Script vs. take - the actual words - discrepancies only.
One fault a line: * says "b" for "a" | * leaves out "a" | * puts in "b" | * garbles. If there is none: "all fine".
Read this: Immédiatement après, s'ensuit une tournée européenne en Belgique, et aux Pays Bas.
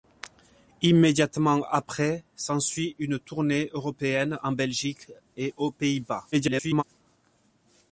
* garbles